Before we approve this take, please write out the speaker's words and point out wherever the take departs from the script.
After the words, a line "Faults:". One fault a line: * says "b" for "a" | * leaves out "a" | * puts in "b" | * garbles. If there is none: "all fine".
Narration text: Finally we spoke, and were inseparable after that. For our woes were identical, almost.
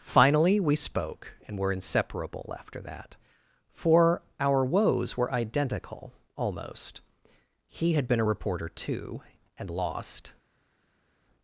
Finally we spoke, and were inseparable after that. For our woes were identical, almost. He had been a reporter too, and lost
Faults:
* puts in "He had been a reporter too and lost"